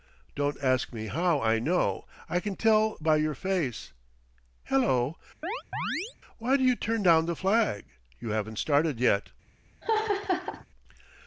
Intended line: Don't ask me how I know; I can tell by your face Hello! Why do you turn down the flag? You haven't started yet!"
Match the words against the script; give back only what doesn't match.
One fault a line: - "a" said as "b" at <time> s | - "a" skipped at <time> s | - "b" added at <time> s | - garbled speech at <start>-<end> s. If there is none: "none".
none